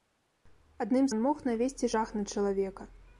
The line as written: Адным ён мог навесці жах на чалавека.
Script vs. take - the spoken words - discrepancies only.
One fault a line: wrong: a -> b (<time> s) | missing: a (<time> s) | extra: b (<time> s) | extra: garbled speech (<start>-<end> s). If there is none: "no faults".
no faults